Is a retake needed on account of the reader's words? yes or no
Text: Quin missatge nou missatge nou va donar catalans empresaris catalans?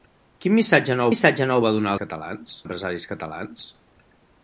no